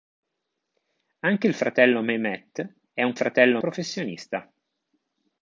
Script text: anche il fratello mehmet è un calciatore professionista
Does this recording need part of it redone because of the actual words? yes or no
yes